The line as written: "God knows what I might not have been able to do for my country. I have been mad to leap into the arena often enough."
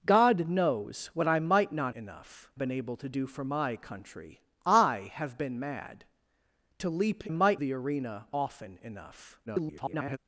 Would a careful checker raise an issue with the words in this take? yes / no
yes